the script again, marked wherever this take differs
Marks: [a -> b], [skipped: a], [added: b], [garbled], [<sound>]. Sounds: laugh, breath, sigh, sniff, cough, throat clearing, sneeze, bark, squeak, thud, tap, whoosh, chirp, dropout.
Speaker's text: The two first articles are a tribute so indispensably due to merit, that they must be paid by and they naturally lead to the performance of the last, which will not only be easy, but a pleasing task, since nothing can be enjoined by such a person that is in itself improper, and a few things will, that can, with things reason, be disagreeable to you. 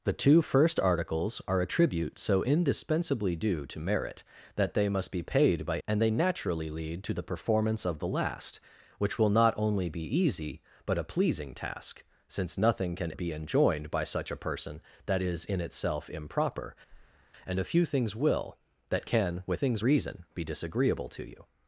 The two first articles are a tribute so indispensably due to merit, that they must be paid by and they naturally lead to the performance of the last, which will not only be easy, but a pleasing task, since nothing can be enjoined by such a person that is in itself improper, [breath] and a few things will, that can, with things reason, be disagreeable to you.